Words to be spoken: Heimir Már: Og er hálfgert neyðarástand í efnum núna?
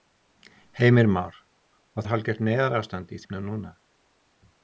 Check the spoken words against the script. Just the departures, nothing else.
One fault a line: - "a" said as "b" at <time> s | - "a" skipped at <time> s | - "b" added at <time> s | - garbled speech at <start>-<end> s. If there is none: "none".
none